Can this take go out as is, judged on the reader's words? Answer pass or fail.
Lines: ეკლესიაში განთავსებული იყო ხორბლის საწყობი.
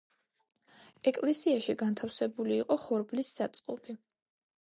pass